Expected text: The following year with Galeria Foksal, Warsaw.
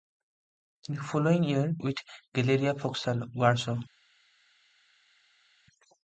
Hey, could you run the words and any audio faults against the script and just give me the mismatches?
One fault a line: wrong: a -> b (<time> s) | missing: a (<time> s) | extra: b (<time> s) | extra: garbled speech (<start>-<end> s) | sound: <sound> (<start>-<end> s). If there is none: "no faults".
no faults